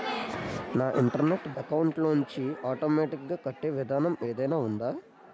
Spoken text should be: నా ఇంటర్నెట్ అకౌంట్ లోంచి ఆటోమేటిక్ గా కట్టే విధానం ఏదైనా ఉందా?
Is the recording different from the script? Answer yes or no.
no